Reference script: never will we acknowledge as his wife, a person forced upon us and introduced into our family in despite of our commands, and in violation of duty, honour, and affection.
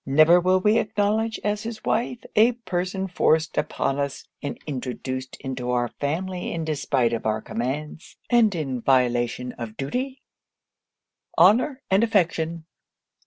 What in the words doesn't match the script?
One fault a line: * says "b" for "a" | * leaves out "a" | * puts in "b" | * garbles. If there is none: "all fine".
all fine